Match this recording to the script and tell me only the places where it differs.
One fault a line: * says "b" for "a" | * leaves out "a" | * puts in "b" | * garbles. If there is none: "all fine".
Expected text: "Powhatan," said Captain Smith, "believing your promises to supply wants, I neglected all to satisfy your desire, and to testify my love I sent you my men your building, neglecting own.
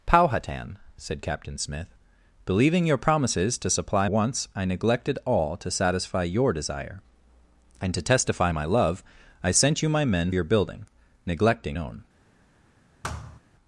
all fine